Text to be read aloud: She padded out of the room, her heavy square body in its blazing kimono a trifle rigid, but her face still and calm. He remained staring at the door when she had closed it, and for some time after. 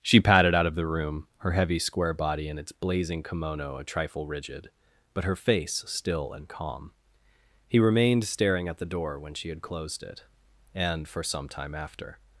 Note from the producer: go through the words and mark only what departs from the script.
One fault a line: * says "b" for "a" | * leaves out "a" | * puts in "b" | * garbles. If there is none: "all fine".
all fine